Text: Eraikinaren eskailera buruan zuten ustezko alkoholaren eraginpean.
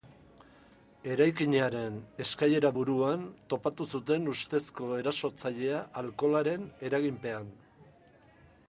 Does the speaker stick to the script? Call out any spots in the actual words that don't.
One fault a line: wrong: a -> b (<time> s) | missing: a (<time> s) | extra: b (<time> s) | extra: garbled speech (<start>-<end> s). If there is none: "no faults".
extra: topatu (3.5 s)
extra: erasotzailea (5.0 s)